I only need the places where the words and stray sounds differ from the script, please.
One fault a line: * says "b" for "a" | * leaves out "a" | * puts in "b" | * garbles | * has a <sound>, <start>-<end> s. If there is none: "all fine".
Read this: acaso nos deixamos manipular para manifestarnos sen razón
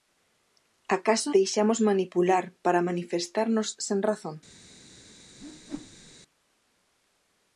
* leaves out "nos"
* has a whoosh, 5.4-6.2 s